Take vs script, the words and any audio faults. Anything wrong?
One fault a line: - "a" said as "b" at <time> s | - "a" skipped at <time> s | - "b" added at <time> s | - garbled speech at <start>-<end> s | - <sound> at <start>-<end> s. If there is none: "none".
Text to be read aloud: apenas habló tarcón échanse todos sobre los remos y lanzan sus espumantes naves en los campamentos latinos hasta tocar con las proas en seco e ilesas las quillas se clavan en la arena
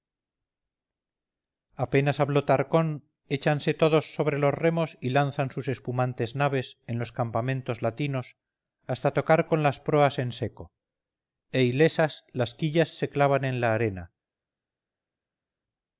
none